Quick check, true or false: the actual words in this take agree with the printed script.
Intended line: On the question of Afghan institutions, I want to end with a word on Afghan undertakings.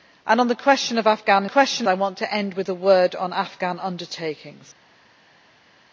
false